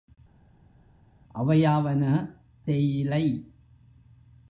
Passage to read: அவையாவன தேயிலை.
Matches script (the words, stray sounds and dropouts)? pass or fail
pass